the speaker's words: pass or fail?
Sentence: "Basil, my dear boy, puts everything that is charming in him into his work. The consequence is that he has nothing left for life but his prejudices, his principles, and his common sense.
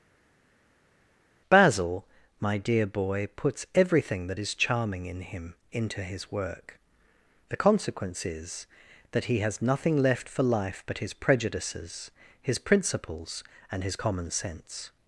pass